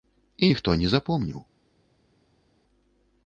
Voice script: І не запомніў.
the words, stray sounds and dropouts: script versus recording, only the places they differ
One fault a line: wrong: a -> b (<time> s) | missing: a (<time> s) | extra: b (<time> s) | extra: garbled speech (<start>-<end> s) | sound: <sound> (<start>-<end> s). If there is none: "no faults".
extra: ніхто (0.5 s)